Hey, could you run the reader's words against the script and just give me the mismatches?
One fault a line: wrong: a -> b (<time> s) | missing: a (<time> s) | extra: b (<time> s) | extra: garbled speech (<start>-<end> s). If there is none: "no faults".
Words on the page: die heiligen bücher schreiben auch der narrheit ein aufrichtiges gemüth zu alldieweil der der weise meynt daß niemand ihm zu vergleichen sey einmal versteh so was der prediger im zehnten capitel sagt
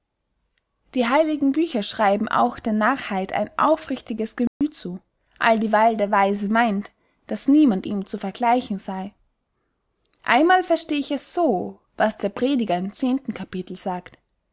missing: der (6.1 s)
extra: ich es (11.0 s)